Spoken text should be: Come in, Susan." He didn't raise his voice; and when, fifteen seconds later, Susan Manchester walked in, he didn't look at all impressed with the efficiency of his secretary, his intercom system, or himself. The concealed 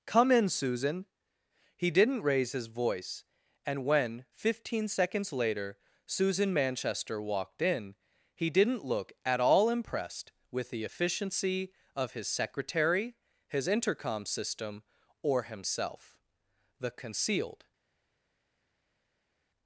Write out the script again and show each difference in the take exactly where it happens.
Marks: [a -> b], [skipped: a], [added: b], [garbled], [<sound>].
Come in, Susan." He didn't raise his voice; and when, fifteen seconds later, Susan Manchester walked in, he didn't look at all impressed with the efficiency of his secretary, his intercom system, or himself. The concealed